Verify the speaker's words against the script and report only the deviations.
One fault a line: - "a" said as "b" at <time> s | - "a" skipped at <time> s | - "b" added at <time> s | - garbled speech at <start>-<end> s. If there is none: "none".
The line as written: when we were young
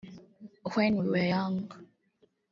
none